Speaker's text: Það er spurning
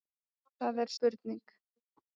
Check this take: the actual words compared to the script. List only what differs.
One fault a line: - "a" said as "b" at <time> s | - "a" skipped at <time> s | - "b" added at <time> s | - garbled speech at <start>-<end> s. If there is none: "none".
none